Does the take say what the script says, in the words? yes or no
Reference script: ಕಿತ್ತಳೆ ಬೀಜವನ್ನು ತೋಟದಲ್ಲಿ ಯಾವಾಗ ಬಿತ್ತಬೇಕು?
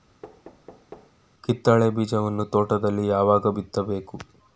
yes